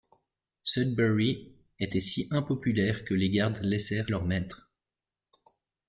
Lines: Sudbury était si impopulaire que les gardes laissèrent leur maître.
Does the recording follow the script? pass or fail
pass